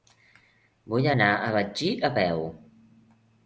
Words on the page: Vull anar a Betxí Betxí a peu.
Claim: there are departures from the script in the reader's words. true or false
true